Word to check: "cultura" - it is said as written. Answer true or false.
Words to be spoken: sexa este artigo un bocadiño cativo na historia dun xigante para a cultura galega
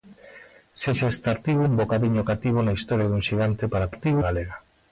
false